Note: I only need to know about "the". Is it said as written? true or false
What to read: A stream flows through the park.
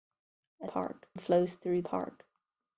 false